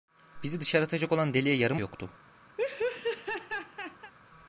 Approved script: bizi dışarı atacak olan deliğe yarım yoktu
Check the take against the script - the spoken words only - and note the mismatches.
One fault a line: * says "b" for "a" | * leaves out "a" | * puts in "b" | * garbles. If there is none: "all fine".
all fine